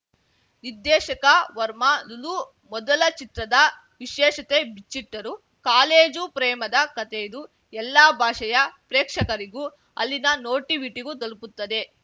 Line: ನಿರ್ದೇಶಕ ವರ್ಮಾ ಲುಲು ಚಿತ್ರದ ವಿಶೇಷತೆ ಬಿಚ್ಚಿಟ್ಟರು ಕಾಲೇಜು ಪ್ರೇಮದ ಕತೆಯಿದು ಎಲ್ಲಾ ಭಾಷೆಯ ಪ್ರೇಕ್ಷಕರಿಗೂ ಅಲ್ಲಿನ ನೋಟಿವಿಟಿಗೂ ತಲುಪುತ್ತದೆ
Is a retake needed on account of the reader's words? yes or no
yes